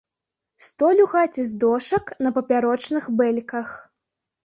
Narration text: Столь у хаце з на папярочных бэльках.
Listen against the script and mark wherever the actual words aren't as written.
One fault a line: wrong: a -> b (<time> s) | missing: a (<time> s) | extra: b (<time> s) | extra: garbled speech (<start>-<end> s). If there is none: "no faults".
extra: дошак (1.6 s)